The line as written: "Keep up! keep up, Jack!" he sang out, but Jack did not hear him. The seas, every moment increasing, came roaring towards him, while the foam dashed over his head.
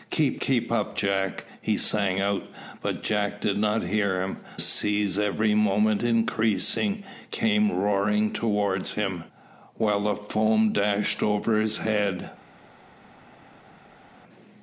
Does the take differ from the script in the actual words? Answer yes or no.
yes